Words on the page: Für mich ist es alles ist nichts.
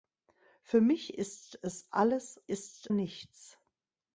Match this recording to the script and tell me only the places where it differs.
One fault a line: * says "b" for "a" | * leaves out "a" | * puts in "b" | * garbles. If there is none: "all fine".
all fine